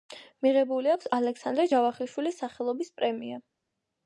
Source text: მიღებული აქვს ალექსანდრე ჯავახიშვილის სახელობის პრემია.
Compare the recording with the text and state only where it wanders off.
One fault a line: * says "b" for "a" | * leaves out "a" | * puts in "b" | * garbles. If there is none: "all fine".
all fine